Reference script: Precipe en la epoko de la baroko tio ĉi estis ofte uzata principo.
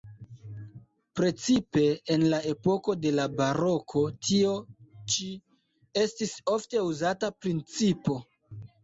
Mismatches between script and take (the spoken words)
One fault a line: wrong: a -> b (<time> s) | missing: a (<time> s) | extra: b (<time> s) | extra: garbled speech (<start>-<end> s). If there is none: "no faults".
no faults